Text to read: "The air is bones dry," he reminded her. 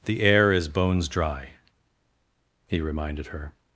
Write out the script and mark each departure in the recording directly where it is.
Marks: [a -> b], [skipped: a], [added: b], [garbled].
"The air is bones dry," he reminded her.